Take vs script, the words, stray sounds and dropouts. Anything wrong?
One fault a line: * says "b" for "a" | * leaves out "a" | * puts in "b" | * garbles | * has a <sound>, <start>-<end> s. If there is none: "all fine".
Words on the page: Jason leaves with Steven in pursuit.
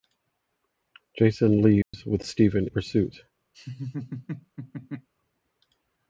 * has a dropout, 1.8-1.9 s
* leaves out "in"
* has a laugh, 3.5-5.1 s